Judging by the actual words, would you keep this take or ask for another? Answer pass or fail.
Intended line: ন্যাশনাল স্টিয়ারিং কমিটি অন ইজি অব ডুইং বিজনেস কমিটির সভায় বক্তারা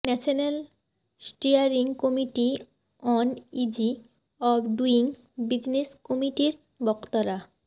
fail